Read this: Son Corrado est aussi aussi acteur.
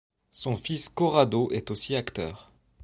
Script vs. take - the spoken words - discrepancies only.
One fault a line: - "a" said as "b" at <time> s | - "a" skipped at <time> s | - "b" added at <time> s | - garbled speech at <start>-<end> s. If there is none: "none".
- "fils" added at 0.6 s
- "aussi" skipped at 1.9 s